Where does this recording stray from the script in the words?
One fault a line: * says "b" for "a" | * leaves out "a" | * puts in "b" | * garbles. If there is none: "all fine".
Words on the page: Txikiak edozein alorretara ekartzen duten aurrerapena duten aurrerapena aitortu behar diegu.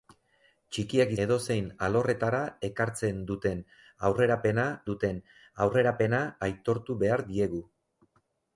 all fine